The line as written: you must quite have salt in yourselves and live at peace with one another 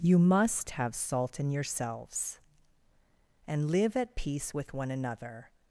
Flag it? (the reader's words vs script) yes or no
yes